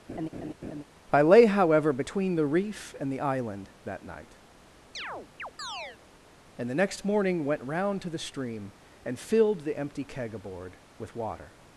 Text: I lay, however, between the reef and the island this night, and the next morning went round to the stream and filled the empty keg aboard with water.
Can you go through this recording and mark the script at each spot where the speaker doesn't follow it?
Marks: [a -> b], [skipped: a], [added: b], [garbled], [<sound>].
[laugh] I lay, however, between the reef and the island [this -> that] night, [chirp] and the next morning went round to the stream and filled the empty keg aboard with water.